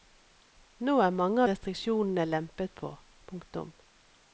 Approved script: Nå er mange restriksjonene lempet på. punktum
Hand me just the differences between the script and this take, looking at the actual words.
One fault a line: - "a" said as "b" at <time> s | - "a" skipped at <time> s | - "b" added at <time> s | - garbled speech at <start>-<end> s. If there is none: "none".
none